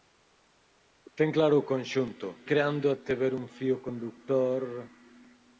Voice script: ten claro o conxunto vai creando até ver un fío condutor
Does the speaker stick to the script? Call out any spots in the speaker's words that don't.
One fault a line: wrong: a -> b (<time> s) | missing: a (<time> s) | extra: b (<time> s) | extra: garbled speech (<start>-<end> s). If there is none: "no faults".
missing: vai (2.3 s)